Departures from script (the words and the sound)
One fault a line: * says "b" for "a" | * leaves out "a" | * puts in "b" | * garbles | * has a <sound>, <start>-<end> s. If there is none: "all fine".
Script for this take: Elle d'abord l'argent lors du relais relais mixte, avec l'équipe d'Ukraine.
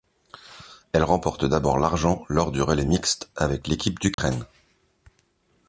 * puts in "remporte"
* leaves out "relais"
* has a dropout, 4.1-4.2 s